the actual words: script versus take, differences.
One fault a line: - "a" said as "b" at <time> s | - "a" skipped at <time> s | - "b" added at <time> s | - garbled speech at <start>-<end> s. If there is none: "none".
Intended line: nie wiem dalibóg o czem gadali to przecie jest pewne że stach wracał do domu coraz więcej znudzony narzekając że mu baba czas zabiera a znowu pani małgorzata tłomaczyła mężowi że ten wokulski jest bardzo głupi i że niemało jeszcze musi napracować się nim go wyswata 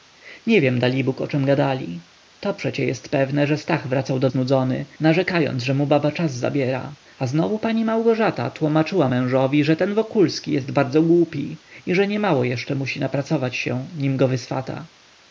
- "domu coraz więcej" skipped at 4.3 s